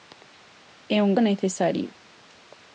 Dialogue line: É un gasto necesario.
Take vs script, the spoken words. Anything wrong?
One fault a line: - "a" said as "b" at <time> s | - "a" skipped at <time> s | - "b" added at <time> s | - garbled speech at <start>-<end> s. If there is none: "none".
- "gasto" skipped at 1.1 s